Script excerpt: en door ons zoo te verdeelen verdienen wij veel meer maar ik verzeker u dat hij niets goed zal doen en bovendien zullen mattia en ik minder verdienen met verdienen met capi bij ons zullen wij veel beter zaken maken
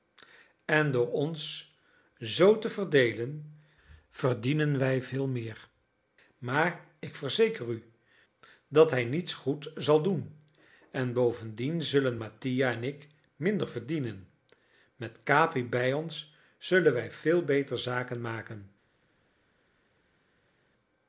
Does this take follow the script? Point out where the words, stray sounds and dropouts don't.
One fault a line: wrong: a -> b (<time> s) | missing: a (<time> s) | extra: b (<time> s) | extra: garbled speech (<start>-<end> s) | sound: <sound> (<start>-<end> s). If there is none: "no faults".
missing: verdienen met (15.2 s)